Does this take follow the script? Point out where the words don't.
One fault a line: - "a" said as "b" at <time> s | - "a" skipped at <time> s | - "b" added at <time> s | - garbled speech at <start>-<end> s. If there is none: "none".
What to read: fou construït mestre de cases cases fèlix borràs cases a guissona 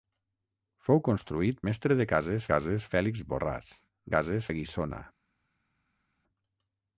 none